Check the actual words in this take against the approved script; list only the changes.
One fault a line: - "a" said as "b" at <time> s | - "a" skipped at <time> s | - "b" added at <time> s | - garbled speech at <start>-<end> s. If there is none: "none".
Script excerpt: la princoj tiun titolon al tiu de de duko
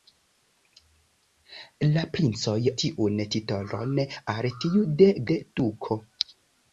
none